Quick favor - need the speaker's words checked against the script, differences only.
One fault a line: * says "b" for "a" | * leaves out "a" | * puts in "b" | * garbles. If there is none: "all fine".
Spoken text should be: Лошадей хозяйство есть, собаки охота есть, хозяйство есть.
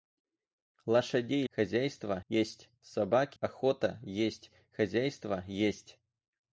all fine